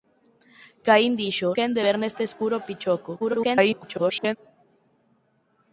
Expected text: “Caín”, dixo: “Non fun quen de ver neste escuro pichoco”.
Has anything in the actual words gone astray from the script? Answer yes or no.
yes